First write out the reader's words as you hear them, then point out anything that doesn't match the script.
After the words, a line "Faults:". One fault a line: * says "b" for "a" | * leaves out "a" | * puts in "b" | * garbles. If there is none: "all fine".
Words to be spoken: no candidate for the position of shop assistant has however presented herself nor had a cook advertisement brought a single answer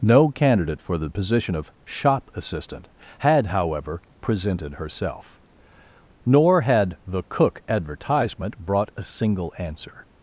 no candidate for the position of shop assistant had however presented herself nor had the cook advertisement brought a single answer
Faults:
* says "had" for "has"
* says "the" for "a"